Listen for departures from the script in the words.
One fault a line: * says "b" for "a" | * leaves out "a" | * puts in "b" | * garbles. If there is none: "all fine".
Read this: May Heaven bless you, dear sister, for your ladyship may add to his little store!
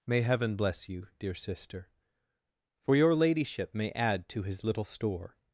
all fine